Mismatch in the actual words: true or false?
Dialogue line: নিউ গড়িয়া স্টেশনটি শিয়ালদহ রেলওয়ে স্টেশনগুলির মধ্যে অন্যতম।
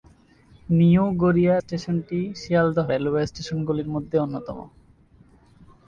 false